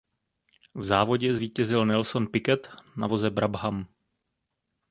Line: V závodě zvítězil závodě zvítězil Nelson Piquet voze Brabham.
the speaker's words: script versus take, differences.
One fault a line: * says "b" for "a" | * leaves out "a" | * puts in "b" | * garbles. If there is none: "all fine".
* leaves out "závodě zvítězil"
* puts in "na"